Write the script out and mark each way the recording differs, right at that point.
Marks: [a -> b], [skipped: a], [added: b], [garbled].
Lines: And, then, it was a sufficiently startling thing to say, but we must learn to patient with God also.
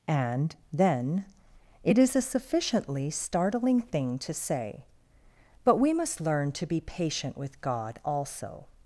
And, then, it [was -> is] a sufficiently startling thing to say, but we must learn to [added: be] patient with God also.